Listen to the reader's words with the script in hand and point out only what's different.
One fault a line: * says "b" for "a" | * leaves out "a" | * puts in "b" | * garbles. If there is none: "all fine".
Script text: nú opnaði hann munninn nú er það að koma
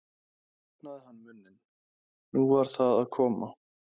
* says "var" for "er"